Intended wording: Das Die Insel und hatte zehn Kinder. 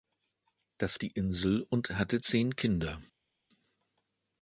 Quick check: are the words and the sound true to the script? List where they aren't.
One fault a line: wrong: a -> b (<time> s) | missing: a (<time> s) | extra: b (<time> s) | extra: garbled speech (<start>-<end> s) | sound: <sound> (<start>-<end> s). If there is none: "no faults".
no faults